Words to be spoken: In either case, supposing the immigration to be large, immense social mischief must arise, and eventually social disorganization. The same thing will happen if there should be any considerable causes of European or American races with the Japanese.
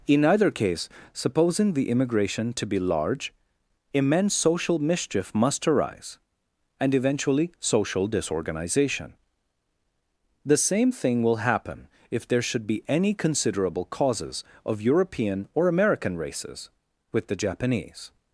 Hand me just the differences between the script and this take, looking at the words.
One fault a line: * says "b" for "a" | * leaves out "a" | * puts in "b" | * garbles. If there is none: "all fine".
all fine